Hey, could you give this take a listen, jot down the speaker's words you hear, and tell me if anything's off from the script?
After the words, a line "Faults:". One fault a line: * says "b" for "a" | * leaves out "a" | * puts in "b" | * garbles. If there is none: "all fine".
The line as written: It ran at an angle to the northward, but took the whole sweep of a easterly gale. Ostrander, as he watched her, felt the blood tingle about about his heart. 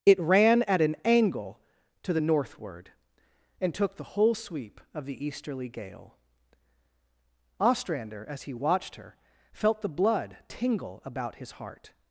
It ran at an angle to the northward, and took the whole sweep of the easterly gale. Ostrander, as he watched her, felt the blood tingle about his heart.
Faults:
* says "and" for "but"
* says "the" for "a"
* leaves out "about"